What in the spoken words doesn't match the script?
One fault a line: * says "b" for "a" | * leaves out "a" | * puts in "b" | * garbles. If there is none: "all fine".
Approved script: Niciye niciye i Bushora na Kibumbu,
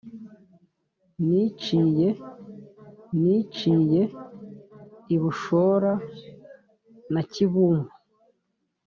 all fine